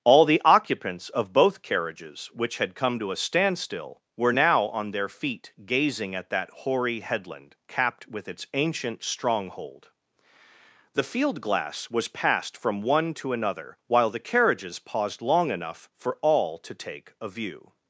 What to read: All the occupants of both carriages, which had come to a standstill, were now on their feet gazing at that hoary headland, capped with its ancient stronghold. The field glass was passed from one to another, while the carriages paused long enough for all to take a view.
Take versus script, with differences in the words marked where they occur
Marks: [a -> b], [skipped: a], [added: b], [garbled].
All the occupants of both carriages, which had come to a standstill, were now on their feet gazing at that hoary headland, capped with its ancient stronghold. The field glass was passed from one to another, while the carriages paused long enough for all to take a view.